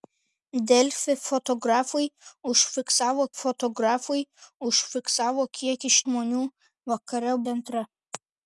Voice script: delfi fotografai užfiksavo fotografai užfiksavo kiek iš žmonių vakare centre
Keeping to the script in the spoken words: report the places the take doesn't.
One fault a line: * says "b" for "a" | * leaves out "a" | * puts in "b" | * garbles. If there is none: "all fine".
all fine